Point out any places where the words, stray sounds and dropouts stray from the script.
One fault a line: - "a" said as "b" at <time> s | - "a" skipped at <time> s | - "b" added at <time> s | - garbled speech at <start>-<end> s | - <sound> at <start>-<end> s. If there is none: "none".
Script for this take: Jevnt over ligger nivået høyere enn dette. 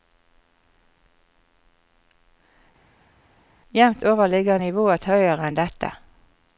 none